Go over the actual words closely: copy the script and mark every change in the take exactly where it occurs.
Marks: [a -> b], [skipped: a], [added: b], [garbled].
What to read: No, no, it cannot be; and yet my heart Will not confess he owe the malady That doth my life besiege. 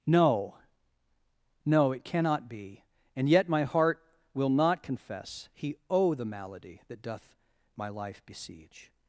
No, no, it cannot be; and yet my heart Will not confess he owe the malady That doth my life besiege.